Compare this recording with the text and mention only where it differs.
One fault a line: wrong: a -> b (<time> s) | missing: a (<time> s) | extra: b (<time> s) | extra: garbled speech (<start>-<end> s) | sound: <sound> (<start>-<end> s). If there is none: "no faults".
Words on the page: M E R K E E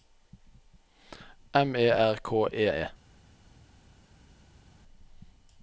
no faults